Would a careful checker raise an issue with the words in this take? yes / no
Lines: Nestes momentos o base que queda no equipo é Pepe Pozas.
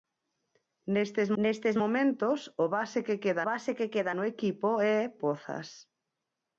yes